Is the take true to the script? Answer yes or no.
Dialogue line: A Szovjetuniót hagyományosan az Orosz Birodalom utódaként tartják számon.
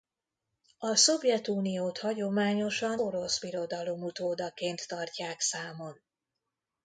no